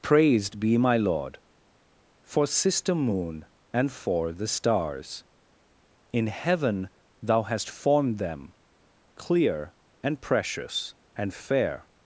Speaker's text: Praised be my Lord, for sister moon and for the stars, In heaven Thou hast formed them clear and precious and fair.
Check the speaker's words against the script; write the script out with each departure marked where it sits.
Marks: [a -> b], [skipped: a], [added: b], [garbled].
Praised be my Lord, for sister moon and for the stars, In heaven Thou hast formed them clear and precious and fair.